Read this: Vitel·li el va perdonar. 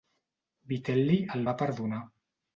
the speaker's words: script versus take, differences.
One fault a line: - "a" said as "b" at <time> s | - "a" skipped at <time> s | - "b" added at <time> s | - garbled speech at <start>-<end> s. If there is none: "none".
none